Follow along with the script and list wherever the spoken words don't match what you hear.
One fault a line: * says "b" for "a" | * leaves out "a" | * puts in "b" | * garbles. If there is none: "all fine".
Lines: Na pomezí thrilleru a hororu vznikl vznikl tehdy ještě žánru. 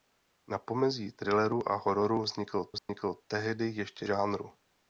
all fine